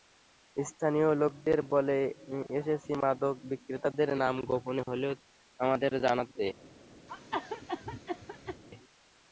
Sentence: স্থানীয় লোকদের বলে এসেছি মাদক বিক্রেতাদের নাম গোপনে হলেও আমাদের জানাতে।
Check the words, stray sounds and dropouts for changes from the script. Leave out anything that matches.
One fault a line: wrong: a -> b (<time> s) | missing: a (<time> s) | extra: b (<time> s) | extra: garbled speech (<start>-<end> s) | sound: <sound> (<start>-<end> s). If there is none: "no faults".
sound: cough (7.1-8.6 s)